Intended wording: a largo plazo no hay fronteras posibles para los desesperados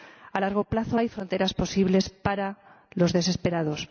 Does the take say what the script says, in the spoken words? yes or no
no